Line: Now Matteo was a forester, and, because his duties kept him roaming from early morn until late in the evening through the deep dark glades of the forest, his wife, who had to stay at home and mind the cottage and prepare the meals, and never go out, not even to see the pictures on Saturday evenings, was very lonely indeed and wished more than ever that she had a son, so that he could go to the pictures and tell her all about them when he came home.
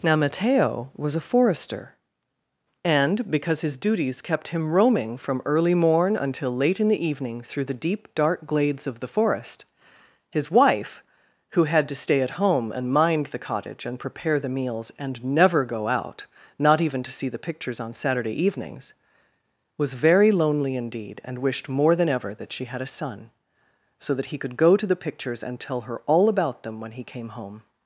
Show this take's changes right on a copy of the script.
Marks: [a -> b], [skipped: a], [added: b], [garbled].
Now Matteo was a forester, and, because his duties kept him roaming from early morn until late in the evening through the deep dark glades of the forest, his wife, who had to stay at home and mind the cottage and prepare the meals, and never go out, not even to see the pictures on Saturday evenings, was very lonely indeed and wished more than ever that she had a son, so that he could go to the pictures and tell her all about them when he came home.